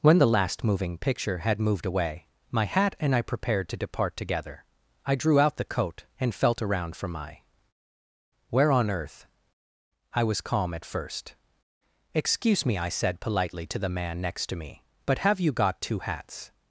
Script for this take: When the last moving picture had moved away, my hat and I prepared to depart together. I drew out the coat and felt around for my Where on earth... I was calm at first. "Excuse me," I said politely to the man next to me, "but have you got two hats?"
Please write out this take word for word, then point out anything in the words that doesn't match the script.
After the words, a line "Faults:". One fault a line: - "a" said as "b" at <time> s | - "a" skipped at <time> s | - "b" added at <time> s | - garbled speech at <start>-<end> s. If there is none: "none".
When the last moving picture had moved away, my hat and I prepared to depart together. I drew out the coat and felt around for my Where on earth... I was calm at first. "Excuse me," I said politely to the man next to me, "but have you got two hats?"
Faults:
none